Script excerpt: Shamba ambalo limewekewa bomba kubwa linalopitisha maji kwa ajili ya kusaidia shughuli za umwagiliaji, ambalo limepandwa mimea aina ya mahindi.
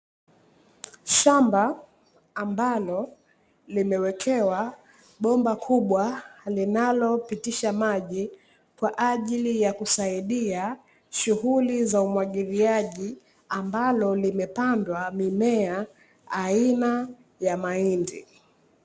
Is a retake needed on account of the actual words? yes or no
no